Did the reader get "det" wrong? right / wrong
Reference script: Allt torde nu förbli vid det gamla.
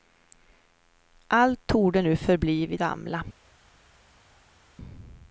wrong